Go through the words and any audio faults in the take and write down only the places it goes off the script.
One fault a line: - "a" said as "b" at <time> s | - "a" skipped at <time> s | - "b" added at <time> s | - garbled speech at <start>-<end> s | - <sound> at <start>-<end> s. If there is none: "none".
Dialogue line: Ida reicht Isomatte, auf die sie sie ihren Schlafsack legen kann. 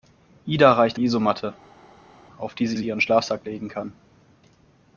none